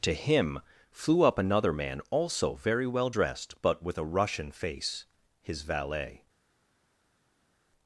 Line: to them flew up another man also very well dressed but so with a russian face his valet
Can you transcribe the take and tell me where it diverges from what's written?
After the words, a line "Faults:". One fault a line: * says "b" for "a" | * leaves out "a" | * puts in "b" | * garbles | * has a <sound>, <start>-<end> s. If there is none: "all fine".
to him flew up another man also very well dressed but with a russian face his valet
Faults:
* says "him" for "them"
* leaves out "so"